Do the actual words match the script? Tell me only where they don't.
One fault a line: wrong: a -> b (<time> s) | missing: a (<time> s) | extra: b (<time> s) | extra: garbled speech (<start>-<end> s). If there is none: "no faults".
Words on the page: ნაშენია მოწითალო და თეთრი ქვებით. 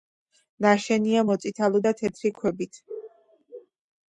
no faults